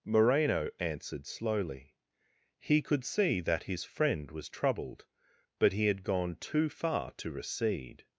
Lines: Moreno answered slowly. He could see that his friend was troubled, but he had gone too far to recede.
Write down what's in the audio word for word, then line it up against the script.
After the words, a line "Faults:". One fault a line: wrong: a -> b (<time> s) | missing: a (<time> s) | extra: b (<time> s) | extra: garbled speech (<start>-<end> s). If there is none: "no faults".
Moreno answered slowly. He could see that his friend was troubled, but he had gone too far to recede.
Faults:
no faults